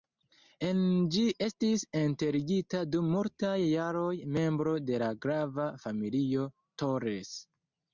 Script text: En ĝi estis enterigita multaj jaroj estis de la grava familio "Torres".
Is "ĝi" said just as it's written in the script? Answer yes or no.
yes